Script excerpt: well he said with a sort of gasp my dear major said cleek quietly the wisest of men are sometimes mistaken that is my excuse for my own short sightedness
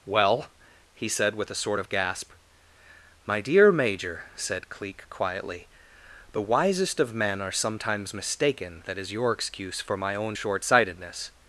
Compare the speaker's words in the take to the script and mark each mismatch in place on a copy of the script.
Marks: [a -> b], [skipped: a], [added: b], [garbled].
well he said with a sort of gasp my dear major said cleek quietly the wisest of men are sometimes mistaken that is [my -> your] excuse for my own short sightedness